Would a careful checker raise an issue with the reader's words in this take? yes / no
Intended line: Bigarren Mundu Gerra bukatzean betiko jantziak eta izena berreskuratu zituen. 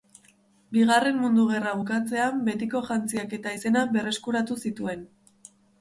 no